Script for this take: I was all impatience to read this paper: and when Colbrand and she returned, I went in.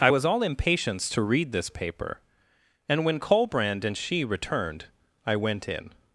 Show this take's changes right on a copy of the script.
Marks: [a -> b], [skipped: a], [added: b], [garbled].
I was all impatience to read this paper: and when Colbrand and she returned, I went in.